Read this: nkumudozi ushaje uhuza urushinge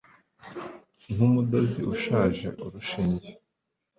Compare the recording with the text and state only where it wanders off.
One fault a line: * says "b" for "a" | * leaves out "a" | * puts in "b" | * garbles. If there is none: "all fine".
* leaves out "uhuza"